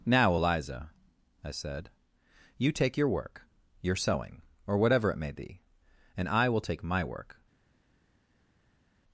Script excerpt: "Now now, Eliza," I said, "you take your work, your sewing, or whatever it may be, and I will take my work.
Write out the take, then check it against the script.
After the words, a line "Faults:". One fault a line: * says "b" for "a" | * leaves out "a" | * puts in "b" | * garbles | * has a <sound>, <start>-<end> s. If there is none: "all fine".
"Now, Eliza," I said, "you take your work, your sewing, or whatever it may be, and I will take my work.
Faults:
* leaves out "now"